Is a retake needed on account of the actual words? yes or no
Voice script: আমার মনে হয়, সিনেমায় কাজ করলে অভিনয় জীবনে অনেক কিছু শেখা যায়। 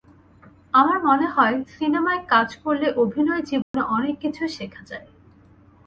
no